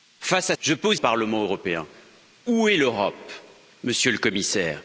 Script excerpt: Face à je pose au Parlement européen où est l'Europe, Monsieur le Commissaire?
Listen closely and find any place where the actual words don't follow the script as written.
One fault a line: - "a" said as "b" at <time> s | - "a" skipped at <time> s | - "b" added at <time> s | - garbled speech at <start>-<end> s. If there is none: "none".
none